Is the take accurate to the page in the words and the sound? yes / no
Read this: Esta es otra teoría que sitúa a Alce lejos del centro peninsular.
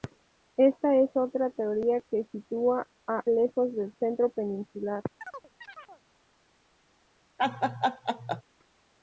no